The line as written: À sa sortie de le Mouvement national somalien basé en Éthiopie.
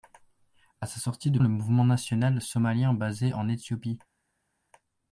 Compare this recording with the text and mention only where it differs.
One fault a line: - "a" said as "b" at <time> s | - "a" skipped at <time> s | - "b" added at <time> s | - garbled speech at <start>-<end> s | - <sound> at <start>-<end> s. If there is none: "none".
none